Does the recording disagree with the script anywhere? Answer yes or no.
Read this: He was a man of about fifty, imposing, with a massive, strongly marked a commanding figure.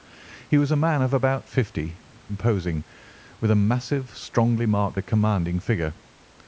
no